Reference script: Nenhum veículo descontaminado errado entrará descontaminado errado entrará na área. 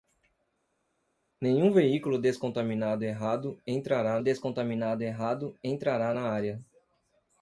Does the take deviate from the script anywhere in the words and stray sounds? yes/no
no